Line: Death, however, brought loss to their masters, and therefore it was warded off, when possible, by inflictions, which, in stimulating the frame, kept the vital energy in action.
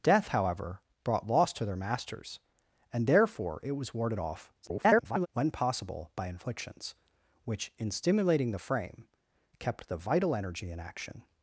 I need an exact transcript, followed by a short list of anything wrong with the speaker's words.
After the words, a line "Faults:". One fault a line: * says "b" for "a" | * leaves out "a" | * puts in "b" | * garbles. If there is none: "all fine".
Death, however, brought loss to their masters, and therefore it was warded off, [garbled] when possible, by inflictions, which, in stimulating the frame, kept the vital energy in action.
Faults:
* garbles